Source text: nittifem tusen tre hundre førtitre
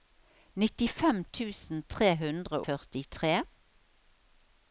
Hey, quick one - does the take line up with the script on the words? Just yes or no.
yes